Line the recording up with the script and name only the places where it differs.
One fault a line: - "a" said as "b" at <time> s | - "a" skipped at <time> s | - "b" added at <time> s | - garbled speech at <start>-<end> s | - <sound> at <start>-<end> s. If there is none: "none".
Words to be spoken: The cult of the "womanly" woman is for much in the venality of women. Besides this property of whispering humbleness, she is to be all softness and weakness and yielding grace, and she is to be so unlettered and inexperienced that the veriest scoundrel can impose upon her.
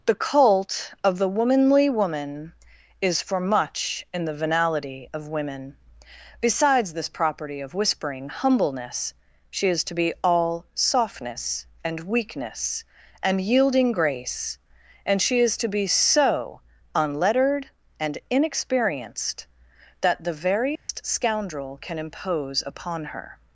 - dropout at 20.8-20.9 s